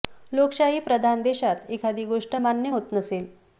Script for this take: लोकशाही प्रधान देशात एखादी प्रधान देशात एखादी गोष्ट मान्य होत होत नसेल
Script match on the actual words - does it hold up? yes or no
no